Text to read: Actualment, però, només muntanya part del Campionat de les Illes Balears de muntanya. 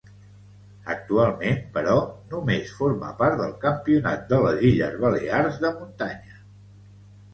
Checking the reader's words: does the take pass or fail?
fail